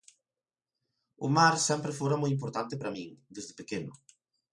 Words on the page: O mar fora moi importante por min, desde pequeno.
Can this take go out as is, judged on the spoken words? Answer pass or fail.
fail